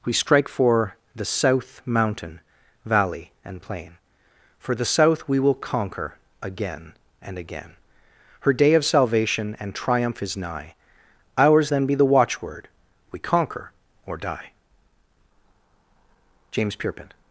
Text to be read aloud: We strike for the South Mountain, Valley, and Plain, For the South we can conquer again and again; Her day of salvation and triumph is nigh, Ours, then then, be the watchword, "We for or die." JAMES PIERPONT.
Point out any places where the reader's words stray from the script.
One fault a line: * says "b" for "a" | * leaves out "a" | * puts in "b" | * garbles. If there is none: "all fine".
* says "will" for "can"
* leaves out "then"
* says "conquer" for "for"